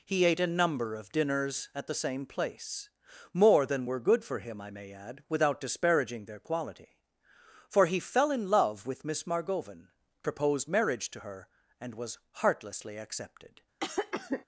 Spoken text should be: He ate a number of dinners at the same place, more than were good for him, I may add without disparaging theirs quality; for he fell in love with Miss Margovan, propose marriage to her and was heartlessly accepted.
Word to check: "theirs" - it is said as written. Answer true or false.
false